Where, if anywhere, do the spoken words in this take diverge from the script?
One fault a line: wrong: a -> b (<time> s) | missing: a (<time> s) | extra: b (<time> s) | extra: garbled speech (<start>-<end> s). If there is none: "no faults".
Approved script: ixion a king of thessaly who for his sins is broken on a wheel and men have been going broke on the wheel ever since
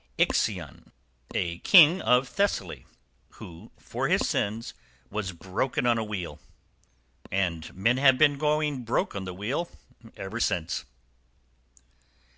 wrong: is -> was (5.1 s)